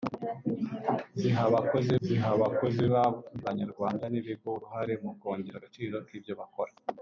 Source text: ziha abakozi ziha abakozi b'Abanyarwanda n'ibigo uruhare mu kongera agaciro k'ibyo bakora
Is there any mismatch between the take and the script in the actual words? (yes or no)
no